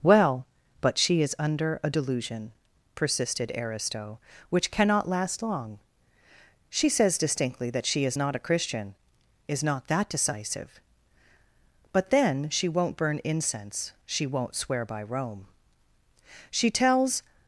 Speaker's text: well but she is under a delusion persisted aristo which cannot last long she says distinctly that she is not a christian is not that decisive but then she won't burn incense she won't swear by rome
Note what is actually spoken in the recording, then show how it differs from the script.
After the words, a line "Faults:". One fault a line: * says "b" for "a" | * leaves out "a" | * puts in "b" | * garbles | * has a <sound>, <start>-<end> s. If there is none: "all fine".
well but she is under a delusion persisted aristo which cannot last long she says distinctly that she is not a christian is not that decisive but then she won't burn incense she won't swear by rome she tells
Faults:
* puts in "she tells"